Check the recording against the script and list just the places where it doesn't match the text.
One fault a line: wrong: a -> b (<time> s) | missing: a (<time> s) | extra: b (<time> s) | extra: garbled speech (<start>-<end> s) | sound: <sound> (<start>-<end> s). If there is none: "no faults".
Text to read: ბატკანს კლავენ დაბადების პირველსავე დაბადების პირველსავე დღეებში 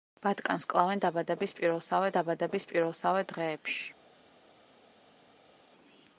no faults